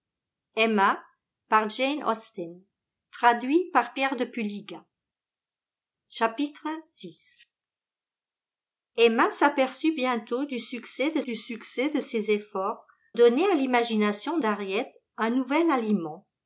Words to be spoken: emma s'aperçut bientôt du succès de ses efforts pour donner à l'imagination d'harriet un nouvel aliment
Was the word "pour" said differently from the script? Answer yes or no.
yes